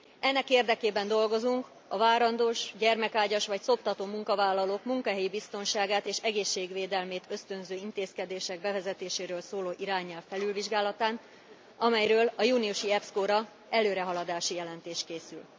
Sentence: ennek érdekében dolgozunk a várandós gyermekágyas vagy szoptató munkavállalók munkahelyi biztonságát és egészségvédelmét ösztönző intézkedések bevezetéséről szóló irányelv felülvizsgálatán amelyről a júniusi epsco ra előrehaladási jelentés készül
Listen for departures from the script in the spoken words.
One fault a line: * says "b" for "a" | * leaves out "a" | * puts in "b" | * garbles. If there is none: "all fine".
all fine